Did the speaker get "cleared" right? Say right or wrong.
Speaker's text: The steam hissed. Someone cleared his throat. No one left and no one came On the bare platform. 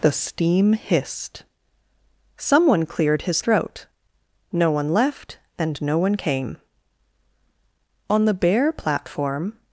right